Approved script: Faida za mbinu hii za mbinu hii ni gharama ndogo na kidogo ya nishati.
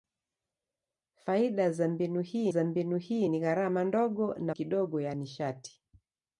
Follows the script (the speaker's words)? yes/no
yes